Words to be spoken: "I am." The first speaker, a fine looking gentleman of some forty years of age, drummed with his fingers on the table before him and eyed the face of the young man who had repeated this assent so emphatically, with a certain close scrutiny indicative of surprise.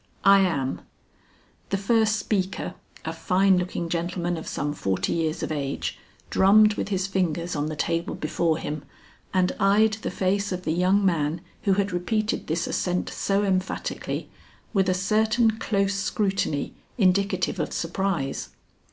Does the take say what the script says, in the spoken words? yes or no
yes